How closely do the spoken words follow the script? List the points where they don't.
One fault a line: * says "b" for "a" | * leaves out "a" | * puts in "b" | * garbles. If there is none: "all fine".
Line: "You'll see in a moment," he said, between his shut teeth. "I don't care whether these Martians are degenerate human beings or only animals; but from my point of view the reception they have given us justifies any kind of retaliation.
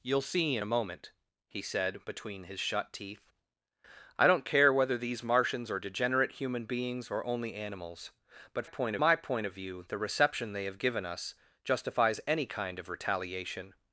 * says "point" for "from"